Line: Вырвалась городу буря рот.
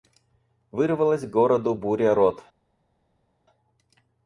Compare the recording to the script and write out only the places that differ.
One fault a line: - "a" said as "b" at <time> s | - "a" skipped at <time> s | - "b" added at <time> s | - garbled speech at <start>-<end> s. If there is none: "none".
none